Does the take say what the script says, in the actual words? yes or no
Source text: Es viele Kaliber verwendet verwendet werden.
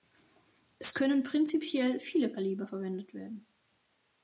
no